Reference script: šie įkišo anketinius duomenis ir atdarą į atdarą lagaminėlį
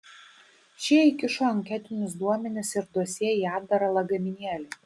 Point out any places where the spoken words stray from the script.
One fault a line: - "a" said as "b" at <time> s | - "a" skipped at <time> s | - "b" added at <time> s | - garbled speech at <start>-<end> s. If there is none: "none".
- "atdarą" said as "dosjė" at 3.0 s